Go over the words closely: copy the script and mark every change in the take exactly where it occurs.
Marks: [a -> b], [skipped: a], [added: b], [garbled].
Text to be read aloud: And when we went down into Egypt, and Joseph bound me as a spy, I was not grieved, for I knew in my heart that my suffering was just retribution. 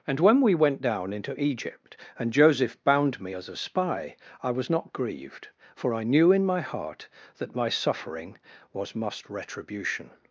And when we went down into Egypt, and Joseph bound me as a spy, I was not grieved, for I knew in my heart that my suffering was [just -> must] retribution.